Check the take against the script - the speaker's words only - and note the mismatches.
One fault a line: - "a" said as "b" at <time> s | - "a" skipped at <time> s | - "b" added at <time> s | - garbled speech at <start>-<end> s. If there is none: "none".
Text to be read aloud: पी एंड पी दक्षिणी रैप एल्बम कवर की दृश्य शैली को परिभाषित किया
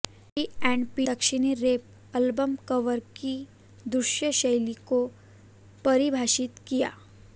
none